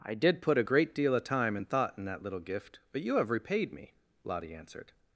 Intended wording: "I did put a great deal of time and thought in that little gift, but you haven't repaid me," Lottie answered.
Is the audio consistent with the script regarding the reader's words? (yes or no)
no